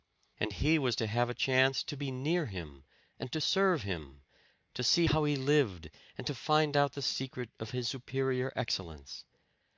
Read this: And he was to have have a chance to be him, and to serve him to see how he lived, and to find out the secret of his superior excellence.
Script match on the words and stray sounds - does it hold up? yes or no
no